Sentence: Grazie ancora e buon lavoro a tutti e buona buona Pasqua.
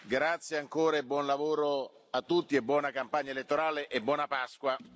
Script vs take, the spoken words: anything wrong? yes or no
yes